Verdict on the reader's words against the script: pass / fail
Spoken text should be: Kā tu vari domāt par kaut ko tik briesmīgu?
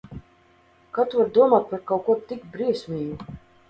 pass